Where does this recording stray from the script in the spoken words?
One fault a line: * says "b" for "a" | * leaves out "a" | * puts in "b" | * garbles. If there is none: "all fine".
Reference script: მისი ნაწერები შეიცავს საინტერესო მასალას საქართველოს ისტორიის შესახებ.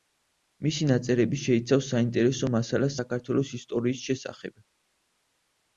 all fine